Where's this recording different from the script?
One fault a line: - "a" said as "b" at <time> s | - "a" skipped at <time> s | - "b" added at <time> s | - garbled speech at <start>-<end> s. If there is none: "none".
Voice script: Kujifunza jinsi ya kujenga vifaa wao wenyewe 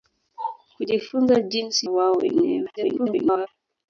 - "ya kujenga vifaa" skipped at 1.9 s
- garbled speech at 2.8-3.5 s